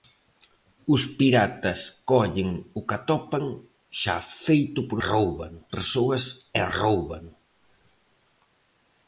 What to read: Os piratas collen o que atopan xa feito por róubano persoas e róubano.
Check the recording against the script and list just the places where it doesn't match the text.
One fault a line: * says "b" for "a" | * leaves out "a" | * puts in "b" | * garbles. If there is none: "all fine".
all fine